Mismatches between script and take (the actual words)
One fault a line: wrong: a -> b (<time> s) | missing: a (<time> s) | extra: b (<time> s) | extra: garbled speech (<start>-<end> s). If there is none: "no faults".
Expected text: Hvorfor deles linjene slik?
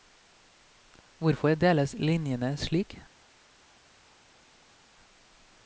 no faults